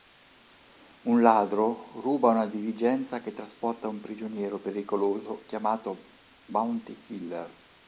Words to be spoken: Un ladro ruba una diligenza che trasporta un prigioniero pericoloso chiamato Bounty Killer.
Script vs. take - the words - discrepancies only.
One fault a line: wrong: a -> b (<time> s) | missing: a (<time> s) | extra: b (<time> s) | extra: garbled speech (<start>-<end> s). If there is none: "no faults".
no faults